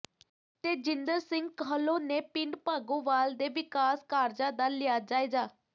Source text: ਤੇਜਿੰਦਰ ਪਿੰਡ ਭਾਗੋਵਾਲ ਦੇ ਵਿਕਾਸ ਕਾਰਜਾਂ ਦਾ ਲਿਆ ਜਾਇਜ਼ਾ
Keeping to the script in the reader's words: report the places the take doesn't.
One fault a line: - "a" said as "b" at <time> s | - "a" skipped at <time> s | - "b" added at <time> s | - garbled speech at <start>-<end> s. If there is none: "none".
- "ਸਿੰਘ ਕਾਹਲੋਂ ਨੇ" added at 1.2 s